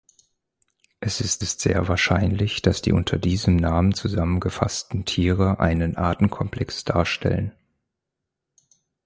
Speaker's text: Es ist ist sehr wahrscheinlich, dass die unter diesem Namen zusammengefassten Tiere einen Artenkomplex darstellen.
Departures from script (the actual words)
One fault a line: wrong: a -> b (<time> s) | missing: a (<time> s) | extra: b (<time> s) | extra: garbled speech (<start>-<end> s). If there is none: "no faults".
no faults